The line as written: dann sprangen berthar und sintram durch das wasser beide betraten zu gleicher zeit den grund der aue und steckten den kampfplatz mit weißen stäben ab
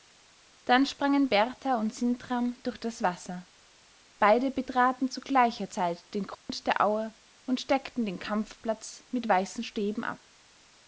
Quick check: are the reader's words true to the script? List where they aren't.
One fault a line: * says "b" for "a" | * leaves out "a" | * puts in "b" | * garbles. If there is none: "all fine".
all fine